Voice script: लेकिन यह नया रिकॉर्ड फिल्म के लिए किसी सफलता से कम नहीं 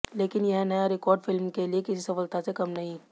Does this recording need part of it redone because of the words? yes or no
no